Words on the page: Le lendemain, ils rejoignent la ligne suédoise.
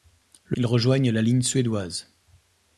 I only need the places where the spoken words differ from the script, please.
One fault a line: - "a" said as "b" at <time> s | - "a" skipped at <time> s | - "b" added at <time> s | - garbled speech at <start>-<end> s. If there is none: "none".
- "lendemain" skipped at 0.6 s